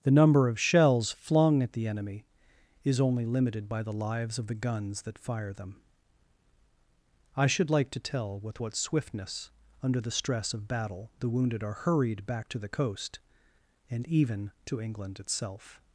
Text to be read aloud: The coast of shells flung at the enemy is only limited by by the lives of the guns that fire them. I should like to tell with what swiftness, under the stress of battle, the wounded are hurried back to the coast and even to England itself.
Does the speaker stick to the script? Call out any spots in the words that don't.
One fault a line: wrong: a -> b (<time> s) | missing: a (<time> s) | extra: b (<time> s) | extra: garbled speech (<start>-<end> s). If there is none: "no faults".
wrong: coast -> number (0.1 s)
missing: by (3.8 s)